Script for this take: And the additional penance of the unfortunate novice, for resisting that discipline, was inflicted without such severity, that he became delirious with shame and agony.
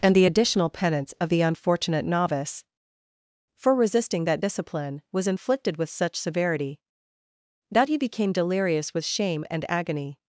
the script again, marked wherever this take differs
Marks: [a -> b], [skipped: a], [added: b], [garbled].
And the additional penance of the unfortunate novice, for resisting that discipline, was inflicted [without -> with] such severity, that he became delirious with shame and agony.